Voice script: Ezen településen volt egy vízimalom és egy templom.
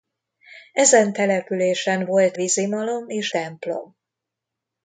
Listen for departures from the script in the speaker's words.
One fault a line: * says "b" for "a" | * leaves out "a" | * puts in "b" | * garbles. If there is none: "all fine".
* leaves out "egy"
* leaves out "egy"